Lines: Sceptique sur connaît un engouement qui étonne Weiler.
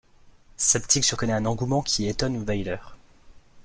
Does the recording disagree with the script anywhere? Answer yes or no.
no